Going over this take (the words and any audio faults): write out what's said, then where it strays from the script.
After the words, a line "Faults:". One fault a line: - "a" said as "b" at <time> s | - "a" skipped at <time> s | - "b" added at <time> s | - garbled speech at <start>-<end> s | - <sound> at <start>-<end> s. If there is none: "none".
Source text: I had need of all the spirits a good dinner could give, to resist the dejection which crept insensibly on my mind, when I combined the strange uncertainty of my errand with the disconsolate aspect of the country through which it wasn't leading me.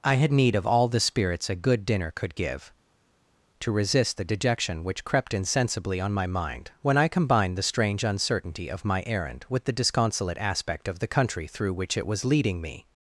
I had need of all the spirits a good dinner could give, to resist the dejection which crept insensibly on my mind, when I combined the strange uncertainty of my errand with the disconsolate aspect of the country through which it was leading me.
Faults:
- "wasn't" said as "was" at 12.1 s